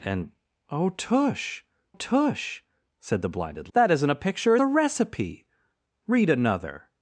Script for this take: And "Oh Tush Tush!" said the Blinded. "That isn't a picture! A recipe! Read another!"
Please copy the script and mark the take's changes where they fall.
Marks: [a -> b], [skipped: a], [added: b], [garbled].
And "Oh Tush Tush!" said the Blinded. "That isn't a picture! A recipe! Read another!"